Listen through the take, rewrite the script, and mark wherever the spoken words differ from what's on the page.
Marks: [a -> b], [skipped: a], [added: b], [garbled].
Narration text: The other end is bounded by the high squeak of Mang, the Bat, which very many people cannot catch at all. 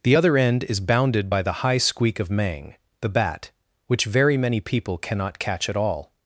The other end is bounded by the high squeak of Mang, the Bat, which very many people cannot catch at all.